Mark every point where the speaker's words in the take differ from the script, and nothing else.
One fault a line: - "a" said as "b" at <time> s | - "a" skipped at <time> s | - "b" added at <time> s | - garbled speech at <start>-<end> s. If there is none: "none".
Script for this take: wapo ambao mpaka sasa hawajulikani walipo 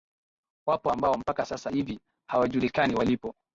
- "hivi" added at 1.7 s